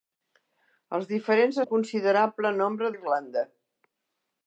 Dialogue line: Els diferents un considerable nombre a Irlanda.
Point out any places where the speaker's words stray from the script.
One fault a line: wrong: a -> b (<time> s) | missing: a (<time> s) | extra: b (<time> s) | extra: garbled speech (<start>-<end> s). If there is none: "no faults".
no faults